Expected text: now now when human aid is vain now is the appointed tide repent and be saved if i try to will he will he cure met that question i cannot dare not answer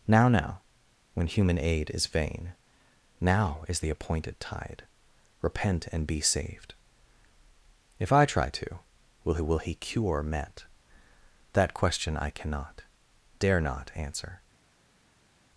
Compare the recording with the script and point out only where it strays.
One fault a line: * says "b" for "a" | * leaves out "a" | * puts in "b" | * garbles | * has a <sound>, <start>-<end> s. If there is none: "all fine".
all fine